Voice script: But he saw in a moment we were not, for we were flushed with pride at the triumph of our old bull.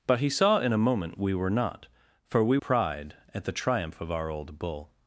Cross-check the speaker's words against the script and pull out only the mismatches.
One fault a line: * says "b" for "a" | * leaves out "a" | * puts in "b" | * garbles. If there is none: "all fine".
* leaves out "were flushed with"